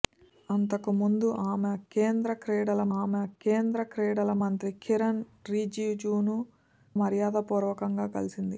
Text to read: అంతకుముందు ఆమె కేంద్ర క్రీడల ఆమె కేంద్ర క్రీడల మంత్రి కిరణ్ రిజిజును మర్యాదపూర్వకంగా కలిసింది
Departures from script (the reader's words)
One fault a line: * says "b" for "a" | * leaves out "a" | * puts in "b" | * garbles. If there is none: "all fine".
all fine